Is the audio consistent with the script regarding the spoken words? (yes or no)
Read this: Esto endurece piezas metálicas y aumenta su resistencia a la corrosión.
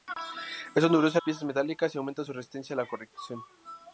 yes